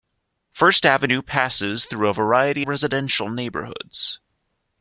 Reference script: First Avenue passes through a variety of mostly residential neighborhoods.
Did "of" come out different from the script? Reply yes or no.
yes